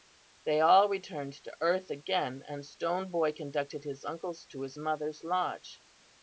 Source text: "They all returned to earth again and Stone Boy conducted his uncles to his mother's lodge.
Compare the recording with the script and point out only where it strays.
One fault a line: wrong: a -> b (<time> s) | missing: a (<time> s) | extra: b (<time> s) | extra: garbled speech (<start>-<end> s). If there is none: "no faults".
no faults